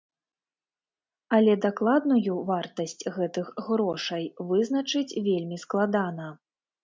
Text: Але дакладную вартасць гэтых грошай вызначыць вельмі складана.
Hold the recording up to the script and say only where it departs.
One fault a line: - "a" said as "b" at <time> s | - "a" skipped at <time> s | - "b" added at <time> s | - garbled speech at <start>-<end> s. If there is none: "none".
none